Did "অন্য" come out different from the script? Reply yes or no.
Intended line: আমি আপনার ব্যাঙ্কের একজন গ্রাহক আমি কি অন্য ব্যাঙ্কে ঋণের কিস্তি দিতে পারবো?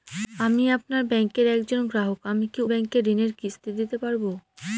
yes